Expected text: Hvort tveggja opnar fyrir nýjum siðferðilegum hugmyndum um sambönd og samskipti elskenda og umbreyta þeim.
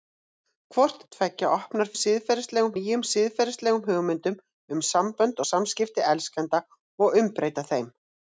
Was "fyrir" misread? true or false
true